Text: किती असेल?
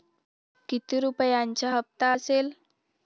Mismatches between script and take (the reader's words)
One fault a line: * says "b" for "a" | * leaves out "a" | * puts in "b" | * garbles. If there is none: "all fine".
* puts in "रुपयांचा हप्ता"